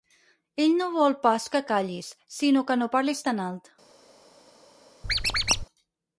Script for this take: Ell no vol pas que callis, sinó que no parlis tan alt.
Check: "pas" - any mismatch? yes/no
no